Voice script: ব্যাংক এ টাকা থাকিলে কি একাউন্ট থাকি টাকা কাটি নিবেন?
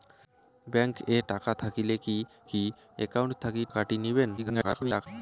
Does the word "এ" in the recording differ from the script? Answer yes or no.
no